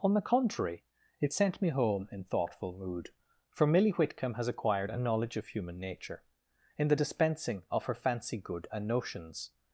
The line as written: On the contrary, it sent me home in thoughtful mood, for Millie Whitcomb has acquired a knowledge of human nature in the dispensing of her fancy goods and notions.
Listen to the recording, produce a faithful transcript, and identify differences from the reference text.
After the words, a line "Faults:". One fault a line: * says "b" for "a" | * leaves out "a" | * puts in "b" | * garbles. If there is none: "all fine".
On the contrary, it sent me home in thoughtful mood, for Millie Whitcomb has acquired a knowledge of human nature in the dispensing of her fancy good and notions.
Faults:
* says "good" for "goods"